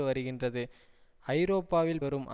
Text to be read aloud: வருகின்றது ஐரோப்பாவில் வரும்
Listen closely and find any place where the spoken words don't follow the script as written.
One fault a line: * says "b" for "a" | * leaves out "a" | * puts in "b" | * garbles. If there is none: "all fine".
all fine